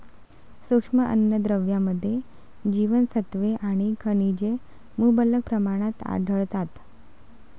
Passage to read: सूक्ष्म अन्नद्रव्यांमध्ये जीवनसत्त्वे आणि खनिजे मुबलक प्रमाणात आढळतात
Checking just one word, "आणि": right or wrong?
right